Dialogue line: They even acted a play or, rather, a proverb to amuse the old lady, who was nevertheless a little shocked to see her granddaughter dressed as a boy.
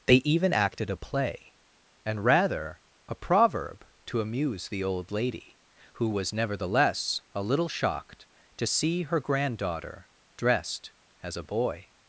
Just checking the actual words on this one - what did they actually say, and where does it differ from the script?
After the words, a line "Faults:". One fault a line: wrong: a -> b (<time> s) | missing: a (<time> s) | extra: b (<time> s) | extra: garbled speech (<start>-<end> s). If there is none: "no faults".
They even acted a play and, rather, a proverb to amuse the old lady, who was nevertheless a little shocked to see her granddaughter dressed as a boy.
Faults:
wrong: or -> and (2.0 s)